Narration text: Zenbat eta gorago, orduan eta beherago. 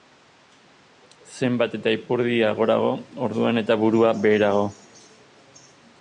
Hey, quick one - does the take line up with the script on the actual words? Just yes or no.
no